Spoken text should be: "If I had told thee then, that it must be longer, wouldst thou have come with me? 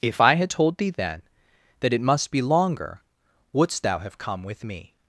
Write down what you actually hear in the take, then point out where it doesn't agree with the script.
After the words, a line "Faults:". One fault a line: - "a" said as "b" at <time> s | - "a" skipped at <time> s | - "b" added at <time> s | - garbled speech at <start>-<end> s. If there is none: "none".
"If I had told thee then, that it must be longer, wouldst thou have come with me?
Faults:
none